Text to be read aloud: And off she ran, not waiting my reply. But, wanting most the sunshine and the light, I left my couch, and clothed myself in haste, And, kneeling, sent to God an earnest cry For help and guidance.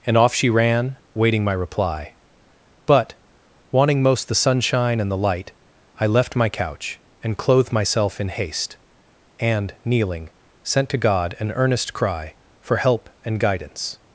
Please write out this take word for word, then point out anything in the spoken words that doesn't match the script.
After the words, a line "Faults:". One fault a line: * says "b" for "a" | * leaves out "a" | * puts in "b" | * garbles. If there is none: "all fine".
And off she ran, waiting my reply. But, wanting most the sunshine and the light, I left my couch, and clothed myself in haste, And, kneeling, sent to God an earnest cry For help and guidance.
Faults:
* leaves out "not"